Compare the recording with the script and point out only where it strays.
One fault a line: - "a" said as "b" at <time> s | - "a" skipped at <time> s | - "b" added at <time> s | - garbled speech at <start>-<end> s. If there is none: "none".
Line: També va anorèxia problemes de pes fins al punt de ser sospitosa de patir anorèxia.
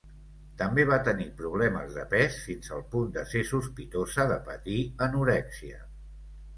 - "anorèxia" said as "tenir" at 1.1 s